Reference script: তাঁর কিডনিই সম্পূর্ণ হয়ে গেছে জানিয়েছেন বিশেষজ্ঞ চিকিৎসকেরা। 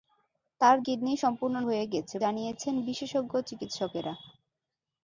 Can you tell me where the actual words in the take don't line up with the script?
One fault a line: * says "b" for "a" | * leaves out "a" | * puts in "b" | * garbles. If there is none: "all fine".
all fine